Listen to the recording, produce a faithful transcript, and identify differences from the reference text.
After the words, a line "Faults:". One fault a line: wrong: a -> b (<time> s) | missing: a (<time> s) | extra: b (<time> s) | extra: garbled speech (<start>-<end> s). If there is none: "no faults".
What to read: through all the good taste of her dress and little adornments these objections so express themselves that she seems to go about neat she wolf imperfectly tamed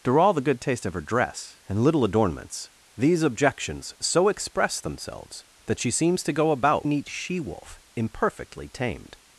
through all the good taste of her dress and little adornments these objections so express themselves that she seems to go about neat she wolf imperfectly tamed
Faults:
no faults